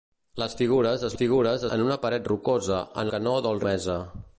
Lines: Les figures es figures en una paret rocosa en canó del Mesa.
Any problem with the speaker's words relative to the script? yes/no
no